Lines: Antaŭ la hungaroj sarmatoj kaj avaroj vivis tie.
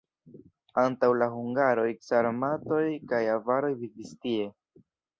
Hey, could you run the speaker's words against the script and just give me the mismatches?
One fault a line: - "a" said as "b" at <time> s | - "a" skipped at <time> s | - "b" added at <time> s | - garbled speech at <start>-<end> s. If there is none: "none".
none